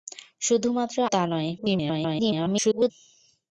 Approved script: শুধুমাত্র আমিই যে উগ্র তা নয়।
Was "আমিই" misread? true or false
true